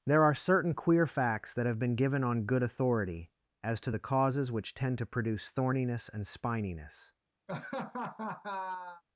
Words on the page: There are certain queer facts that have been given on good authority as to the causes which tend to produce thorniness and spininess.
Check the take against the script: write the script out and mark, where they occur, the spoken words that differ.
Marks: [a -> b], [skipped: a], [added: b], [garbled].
There are certain queer facts that have been given on good authority as to the causes which tend to produce thorniness and spininess.